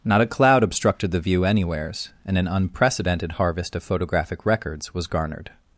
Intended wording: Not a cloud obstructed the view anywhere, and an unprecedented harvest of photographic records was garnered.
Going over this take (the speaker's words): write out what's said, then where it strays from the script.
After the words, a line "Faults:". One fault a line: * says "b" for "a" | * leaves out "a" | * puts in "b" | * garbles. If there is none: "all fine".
Not a cloud obstructed the view anywheres, and an unprecedented harvest of photographic records was garnered.
Faults:
* says "anywheres" for "anywhere"